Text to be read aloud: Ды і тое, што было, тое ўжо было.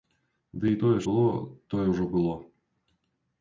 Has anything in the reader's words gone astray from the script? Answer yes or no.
yes